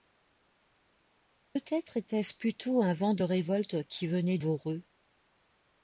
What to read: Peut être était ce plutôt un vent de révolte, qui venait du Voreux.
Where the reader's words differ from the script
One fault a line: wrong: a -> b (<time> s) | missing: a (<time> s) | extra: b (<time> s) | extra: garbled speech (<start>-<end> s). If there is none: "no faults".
missing: du (4.4 s)